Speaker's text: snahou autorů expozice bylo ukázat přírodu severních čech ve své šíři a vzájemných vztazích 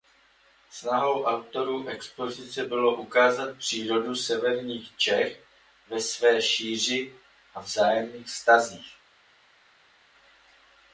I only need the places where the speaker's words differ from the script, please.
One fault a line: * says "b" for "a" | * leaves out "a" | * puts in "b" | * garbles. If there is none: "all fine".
all fine